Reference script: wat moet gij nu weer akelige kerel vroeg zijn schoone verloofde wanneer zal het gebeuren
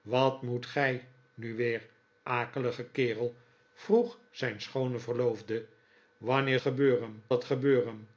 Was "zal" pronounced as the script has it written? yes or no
no